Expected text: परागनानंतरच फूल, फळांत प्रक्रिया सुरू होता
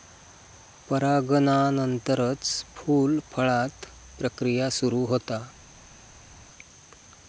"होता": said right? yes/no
yes